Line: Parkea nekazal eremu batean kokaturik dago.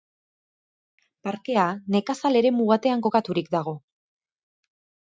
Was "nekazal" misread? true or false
false